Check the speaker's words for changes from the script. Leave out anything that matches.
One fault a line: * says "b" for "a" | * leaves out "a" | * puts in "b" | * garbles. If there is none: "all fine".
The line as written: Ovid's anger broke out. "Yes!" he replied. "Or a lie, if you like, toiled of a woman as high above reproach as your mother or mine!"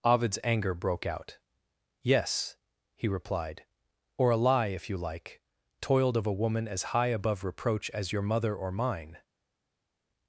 all fine